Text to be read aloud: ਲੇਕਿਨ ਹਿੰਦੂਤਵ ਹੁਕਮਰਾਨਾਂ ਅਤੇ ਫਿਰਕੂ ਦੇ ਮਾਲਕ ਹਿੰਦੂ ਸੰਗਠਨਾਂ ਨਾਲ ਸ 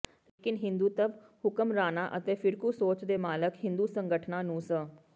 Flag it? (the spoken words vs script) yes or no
yes